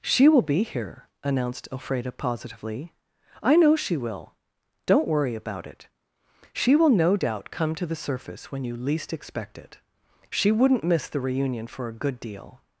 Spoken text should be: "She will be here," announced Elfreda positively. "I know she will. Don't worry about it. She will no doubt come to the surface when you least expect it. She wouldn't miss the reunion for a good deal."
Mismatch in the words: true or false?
false